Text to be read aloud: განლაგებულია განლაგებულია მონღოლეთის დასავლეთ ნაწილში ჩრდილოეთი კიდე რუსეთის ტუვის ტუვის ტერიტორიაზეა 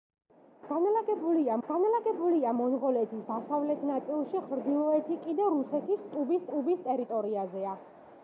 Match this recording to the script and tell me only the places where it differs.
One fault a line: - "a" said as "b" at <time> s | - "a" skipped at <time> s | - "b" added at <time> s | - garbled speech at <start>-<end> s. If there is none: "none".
none